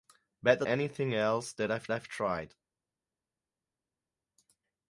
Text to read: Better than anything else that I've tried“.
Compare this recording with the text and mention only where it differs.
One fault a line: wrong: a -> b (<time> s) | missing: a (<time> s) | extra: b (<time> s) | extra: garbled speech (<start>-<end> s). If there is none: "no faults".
missing: than (0.7 s)
extra: I've (1.9 s)